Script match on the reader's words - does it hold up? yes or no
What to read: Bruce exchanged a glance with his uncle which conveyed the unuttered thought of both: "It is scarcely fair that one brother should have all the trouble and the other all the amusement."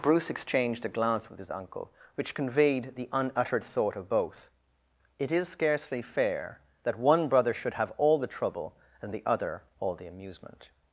yes